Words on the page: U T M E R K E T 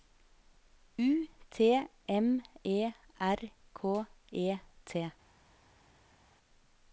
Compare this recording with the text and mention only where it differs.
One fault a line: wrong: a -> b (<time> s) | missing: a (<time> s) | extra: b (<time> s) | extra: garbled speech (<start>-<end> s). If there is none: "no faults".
no faults